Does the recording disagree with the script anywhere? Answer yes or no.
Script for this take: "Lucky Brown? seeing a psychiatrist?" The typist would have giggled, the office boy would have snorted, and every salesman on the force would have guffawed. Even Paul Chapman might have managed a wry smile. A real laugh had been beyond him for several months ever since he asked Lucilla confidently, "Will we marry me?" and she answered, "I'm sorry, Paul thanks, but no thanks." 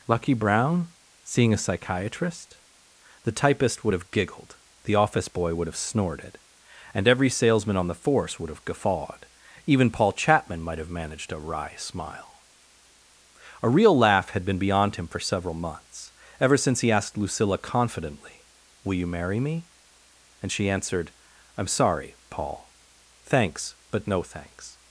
yes